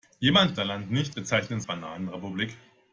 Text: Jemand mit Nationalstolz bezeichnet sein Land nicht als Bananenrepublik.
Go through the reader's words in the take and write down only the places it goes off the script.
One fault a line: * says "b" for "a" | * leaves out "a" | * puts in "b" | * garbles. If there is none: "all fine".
* leaves out "mit Nationalstolz bezeichnet"
* says "bezeichnet" for "als"